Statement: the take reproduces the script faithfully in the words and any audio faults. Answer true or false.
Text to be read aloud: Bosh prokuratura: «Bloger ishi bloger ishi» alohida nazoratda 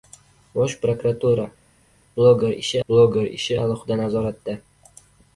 true